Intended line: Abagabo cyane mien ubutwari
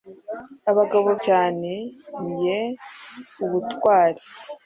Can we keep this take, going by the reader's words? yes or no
yes